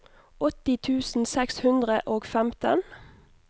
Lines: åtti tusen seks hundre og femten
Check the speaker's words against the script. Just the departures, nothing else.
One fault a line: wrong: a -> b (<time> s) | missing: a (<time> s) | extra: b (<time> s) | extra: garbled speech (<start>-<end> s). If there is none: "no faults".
no faults